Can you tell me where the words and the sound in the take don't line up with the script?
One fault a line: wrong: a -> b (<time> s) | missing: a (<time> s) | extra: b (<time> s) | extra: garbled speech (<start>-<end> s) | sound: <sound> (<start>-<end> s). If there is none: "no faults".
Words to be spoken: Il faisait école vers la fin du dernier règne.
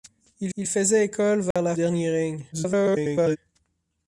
extra: il (0.6 s)
sound: dropout (1.5-1.6 s)
missing: fin du (1.7 s)
extra: garbled speech (2.5-3.4 s)